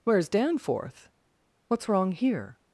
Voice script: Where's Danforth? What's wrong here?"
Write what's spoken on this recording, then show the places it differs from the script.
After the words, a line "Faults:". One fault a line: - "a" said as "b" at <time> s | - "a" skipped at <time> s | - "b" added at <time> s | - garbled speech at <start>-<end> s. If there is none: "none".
Where's Danforth? What's wrong here?"
Faults:
none